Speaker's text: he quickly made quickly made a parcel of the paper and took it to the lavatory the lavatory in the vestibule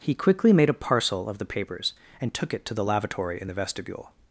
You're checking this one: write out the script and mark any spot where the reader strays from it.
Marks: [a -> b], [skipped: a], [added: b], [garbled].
he quickly made [skipped: quickly made] a parcel of the [paper -> papers] and took it to the lavatory [skipped: the lavatory] in the vestibule